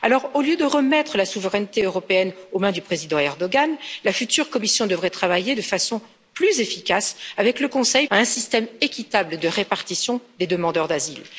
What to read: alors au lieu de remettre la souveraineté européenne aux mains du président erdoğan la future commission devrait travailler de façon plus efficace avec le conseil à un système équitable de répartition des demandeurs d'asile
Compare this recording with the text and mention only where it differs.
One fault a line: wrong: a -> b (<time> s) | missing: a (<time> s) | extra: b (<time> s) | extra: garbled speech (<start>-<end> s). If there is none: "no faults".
no faults